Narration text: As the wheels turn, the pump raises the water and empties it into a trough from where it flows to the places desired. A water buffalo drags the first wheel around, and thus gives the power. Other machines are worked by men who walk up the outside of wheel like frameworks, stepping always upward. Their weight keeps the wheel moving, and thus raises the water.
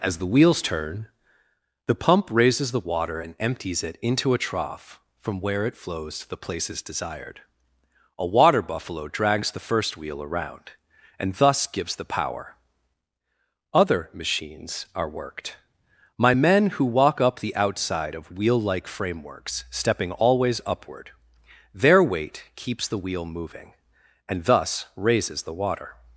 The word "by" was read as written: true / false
false